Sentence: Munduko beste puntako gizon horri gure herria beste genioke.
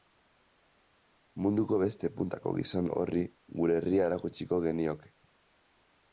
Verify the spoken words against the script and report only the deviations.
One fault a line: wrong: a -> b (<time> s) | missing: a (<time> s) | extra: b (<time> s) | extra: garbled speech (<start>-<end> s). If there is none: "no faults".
wrong: beste -> erakutsiko (4.1 s)